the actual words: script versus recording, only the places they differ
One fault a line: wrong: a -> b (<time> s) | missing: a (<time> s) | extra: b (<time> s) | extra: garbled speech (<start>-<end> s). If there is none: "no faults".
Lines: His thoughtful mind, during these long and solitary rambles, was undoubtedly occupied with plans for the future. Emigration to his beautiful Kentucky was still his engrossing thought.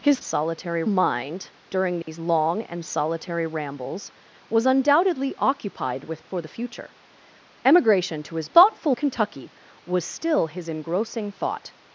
wrong: thoughtful -> solitary (0.2 s)
missing: plans (6.3 s)
wrong: beautiful -> thoughtful (8.5 s)